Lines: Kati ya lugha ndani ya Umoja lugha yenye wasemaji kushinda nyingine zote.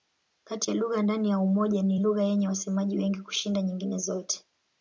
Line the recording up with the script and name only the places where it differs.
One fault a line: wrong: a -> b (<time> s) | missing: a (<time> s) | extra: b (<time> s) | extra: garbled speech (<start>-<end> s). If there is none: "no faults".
extra: ni (1.8 s)
extra: wengi (3.0 s)